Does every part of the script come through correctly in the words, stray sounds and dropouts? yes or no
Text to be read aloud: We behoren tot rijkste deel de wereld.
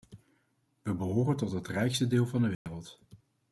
no